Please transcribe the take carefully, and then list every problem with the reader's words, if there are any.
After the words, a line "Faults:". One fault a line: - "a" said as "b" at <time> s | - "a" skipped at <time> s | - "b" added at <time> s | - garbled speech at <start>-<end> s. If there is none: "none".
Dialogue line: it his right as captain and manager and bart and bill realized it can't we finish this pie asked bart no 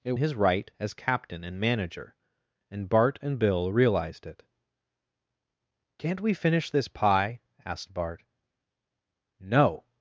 it his right as captain and manager and bart and bill realized it can't we finish this pie asked bart no
Faults:
none